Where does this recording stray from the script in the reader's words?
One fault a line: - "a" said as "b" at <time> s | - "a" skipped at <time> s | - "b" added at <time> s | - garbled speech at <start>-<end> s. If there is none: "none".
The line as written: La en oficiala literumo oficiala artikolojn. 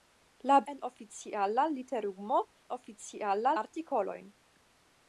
none